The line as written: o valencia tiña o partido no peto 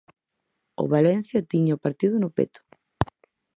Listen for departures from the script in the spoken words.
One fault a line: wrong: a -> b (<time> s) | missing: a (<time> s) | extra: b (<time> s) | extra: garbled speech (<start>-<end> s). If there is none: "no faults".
no faults